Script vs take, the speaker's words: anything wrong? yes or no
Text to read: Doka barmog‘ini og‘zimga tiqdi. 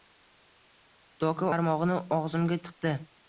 no